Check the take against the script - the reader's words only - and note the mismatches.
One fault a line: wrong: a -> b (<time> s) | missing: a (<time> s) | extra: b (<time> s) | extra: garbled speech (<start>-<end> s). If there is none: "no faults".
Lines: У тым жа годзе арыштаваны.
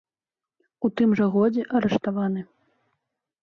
no faults